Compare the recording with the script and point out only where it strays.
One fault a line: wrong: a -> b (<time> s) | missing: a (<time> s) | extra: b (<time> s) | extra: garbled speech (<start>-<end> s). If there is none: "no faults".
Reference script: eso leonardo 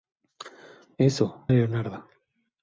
no faults